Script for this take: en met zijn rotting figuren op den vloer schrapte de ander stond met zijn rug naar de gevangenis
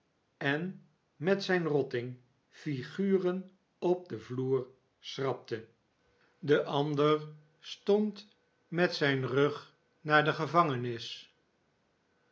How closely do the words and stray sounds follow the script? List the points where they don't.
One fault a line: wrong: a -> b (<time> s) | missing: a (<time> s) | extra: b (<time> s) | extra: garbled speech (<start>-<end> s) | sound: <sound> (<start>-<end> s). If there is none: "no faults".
no faults